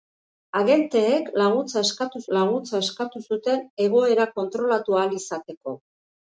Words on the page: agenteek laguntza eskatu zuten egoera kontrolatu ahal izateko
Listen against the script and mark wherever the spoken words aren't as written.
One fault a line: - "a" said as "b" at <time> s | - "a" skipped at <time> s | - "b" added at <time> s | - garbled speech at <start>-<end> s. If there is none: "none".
- "laguntza eskatu" added at 2.4 s